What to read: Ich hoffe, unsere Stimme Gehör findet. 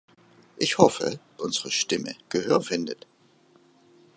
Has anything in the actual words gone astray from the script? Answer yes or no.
no